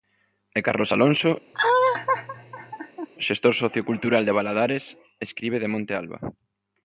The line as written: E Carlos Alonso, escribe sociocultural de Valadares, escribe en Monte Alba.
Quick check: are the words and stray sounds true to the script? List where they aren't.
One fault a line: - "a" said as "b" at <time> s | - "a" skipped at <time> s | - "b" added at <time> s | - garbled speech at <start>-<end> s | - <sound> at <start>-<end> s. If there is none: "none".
- laugh at 1.5-3.1 s
- "escribe" said as "xestor" at 3.3 s
- "en" said as "de" at 5.6 s